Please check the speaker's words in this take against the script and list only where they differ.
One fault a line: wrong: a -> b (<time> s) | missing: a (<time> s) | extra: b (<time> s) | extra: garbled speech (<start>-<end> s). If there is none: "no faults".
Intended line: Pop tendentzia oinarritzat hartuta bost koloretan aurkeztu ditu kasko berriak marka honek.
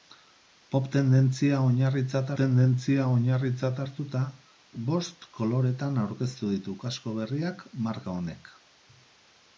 extra: tendentzia oinarritzat (2.4 s)